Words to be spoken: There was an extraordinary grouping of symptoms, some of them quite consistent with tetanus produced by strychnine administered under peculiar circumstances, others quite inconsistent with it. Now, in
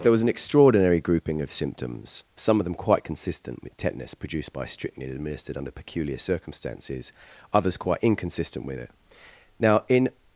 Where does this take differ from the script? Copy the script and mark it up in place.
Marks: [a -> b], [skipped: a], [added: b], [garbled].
There was an extraordinary grouping of symptoms, some of them quite consistent with tetanus produced by strychnine administered under peculiar circumstances, others quite inconsistent with it. Now, in